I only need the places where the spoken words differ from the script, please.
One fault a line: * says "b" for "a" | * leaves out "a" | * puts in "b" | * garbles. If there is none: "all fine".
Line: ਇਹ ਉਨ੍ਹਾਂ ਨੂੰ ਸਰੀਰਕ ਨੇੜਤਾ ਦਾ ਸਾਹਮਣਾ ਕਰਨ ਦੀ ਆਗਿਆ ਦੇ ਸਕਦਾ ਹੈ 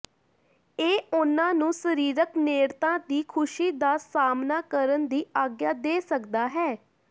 * puts in "ਦੀ ਖੁਸ਼ੀ"